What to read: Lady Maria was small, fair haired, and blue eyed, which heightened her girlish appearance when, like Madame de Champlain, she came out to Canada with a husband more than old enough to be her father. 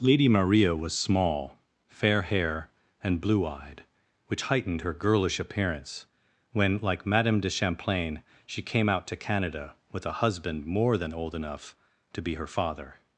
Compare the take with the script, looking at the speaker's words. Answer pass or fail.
fail